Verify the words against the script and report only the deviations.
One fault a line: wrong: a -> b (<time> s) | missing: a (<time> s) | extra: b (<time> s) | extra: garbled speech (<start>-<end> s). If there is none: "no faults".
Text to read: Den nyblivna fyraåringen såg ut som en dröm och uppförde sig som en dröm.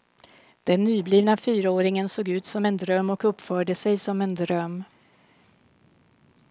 no faults